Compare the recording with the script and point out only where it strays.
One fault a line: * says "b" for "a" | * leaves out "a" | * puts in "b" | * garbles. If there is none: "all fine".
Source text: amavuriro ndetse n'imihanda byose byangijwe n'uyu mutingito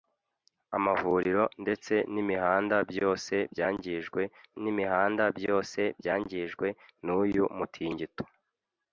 * puts in "n'imihanda byose byangijwe"